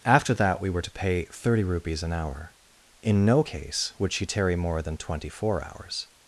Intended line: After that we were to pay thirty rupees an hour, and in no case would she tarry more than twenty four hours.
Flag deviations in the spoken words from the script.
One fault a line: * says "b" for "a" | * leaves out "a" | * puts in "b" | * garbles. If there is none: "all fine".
* leaves out "and"